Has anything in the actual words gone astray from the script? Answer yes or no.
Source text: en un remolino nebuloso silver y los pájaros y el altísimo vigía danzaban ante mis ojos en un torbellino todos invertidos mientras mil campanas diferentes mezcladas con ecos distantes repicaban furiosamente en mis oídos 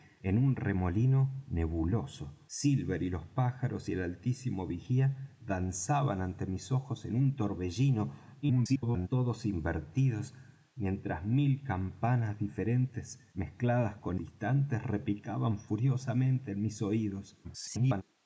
yes